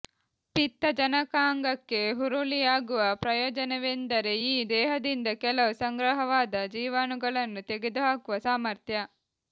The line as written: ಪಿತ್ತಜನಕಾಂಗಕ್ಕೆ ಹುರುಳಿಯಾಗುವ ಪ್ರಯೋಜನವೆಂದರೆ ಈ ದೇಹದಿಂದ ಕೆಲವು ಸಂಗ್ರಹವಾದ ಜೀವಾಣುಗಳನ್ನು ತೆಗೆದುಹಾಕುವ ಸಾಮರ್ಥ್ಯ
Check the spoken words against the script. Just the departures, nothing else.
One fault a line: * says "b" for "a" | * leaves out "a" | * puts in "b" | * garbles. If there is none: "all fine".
all fine